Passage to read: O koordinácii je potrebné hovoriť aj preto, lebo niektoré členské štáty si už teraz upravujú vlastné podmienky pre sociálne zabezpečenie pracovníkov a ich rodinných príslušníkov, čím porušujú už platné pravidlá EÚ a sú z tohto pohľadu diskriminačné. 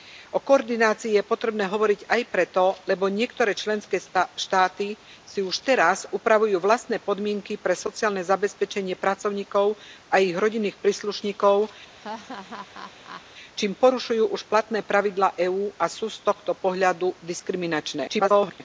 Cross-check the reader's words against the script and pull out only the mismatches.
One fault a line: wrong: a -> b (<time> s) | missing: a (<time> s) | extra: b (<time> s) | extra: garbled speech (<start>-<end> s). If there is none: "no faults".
extra: garbled speech (18.1-18.6 s)